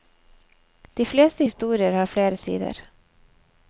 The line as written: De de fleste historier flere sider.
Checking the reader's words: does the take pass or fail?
fail